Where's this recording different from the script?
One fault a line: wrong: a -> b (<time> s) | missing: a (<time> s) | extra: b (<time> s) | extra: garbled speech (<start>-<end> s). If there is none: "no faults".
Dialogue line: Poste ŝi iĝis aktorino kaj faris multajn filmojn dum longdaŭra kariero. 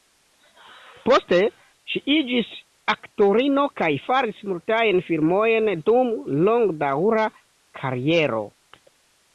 no faults